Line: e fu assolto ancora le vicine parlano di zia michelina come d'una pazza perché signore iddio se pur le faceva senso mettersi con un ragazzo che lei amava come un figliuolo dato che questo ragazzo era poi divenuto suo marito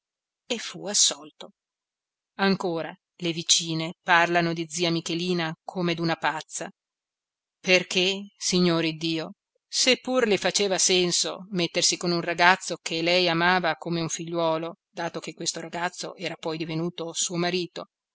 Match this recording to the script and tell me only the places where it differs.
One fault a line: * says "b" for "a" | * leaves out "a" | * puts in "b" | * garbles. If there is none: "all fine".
all fine